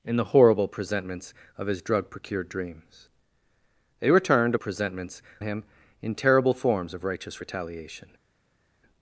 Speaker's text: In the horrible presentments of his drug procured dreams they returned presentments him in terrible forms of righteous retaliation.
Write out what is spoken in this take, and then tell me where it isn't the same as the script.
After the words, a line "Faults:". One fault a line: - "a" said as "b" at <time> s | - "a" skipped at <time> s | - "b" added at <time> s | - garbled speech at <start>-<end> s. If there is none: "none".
In the horrible presentments of his drug procured dreams they returned presentments him in terrible forms of righteous retaliation.
Faults:
none